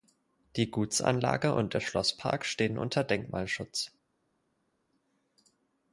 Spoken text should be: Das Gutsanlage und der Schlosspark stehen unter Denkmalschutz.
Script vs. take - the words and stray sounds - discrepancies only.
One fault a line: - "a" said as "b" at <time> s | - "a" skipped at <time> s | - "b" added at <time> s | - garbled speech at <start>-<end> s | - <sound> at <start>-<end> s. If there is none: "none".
- "Das" said as "Die" at 0.6 s